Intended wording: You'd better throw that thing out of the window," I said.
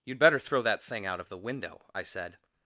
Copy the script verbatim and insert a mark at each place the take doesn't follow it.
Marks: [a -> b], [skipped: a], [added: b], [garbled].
You'd better throw that thing out of the window," I said.